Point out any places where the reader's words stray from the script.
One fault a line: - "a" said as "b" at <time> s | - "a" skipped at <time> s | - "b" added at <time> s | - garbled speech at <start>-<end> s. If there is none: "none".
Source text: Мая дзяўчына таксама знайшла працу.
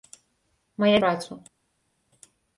- "дзяўчына таксама знайшла" skipped at 0.9 s